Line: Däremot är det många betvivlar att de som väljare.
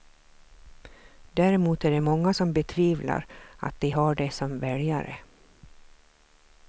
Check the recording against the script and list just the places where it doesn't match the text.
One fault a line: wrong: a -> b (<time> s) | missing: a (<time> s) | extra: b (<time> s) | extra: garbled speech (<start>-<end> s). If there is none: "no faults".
extra: som (2.3 s)
extra: har det (3.9 s)